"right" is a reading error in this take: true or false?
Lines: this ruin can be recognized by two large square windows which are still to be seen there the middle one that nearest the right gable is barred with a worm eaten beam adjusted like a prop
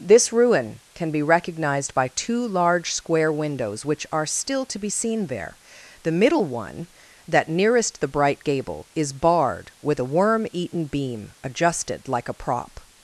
true